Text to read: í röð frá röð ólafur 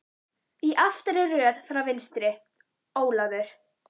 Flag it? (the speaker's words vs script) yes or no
yes